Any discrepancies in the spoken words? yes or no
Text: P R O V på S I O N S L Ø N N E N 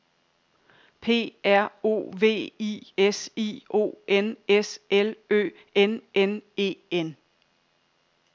yes